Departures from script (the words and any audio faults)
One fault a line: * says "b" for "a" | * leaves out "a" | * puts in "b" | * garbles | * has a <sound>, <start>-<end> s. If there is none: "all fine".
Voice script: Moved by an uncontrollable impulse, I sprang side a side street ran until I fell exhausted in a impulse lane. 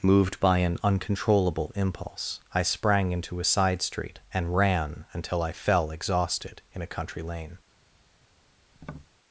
* says "into" for "side"
* puts in "and"
* says "country" for "impulse"
* has a tap, 8.7-9.1 s